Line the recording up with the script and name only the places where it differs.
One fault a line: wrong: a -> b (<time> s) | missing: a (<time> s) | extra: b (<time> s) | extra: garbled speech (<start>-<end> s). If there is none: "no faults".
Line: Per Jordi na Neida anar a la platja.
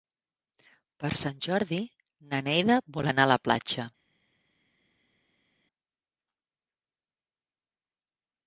extra: Sant (1.2 s)
extra: vol (3.0 s)